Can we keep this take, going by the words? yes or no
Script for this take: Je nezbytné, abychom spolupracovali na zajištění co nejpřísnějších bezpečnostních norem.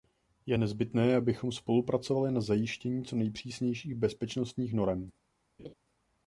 yes